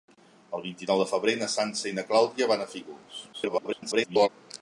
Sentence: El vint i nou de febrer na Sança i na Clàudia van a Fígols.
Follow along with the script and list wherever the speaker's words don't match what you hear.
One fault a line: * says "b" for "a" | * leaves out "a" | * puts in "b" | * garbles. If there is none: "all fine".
* garbles